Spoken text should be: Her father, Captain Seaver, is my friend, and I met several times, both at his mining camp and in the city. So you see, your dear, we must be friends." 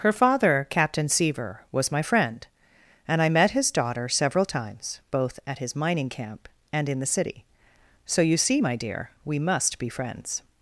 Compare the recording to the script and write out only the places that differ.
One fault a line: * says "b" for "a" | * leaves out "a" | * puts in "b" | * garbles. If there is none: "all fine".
* says "was" for "is"
* puts in "his daughter"
* says "my" for "your"